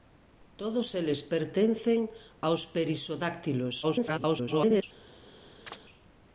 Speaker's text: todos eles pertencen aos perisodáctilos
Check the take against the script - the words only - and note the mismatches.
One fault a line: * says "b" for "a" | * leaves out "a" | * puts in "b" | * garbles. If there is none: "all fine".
* garbles